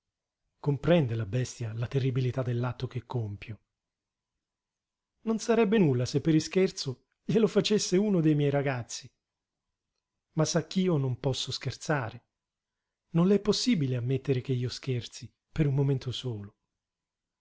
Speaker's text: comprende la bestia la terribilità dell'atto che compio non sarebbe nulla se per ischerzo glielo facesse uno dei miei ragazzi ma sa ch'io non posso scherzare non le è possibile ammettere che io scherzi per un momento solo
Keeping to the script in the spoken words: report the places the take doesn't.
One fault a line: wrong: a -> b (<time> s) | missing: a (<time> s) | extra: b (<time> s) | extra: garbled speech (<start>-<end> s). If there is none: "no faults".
no faults